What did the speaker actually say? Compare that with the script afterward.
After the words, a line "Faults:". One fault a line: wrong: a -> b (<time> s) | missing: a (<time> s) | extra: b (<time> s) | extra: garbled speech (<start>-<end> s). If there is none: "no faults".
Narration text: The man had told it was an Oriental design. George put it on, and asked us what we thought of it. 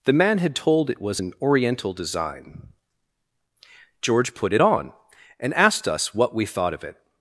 The man had told it was an Oriental design. George put it on, and asked us what we thought of it.
Faults:
no faults